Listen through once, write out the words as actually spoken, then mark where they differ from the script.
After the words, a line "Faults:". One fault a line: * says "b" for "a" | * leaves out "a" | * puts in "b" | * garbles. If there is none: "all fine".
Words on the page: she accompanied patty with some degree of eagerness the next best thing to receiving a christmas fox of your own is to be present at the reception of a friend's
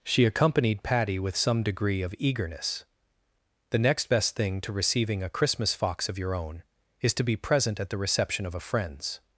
she accompanied patty with some degree of eagerness the next best thing to receiving a christmas fox of your own is to be present at the reception of a friend's
Faults:
all fine